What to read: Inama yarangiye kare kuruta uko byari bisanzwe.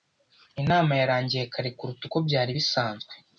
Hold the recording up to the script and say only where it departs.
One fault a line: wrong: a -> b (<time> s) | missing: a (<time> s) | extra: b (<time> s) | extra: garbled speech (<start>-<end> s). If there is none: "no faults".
no faults